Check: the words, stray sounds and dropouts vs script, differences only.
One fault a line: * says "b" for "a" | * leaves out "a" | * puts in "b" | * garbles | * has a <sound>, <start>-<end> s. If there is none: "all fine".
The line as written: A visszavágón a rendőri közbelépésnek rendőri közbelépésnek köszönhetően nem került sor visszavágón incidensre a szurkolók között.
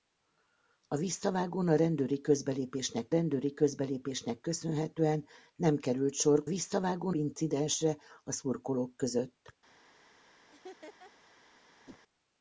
* has a laugh, 10.5-11.1 s
* has a whoosh, 11.9-12.0 s